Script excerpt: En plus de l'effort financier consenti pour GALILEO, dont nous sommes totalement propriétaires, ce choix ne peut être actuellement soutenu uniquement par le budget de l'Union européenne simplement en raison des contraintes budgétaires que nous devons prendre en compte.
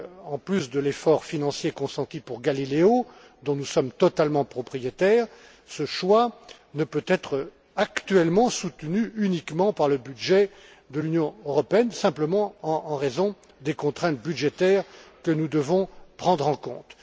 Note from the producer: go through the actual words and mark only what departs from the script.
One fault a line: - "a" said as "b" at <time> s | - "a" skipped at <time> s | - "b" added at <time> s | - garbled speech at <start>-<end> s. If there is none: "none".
none